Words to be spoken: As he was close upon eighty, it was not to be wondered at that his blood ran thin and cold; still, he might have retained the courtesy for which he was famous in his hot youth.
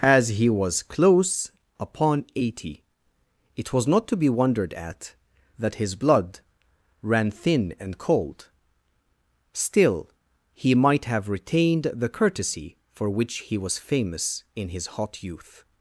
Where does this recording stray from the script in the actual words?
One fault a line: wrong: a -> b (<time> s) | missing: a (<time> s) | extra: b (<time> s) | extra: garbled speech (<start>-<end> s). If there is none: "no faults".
no faults